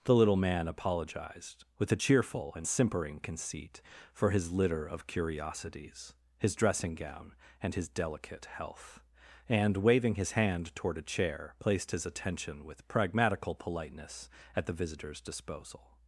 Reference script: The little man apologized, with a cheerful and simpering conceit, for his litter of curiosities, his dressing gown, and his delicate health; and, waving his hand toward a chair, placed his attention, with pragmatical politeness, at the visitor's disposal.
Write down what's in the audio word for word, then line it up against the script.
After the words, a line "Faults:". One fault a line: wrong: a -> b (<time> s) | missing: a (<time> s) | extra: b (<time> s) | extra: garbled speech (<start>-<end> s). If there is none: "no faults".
The little man apologized, with a cheerful and simpering conceit, for his litter of curiosities, his dressing gown, and his delicate health; and, waving his hand toward a chair, placed his attention, with pragmatical politeness, at the visitor's disposal.
Faults:
no faults